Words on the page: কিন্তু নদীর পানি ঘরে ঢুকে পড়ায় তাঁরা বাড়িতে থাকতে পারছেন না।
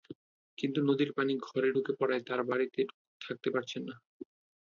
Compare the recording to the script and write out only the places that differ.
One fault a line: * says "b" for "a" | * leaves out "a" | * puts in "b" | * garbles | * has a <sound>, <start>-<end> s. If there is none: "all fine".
all fine